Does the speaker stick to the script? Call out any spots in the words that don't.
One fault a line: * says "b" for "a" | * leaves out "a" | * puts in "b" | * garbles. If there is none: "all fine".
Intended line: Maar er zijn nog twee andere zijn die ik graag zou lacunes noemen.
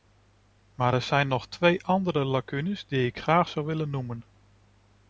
* says "lacunes" for "zijn"
* says "willen" for "lacunes"